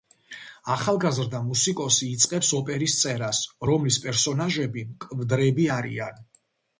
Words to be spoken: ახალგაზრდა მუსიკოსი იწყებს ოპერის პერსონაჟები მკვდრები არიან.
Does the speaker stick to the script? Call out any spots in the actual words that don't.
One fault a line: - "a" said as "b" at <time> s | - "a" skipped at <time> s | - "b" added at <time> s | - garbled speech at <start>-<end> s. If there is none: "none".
- "წერას რომლის" added at 3.0 s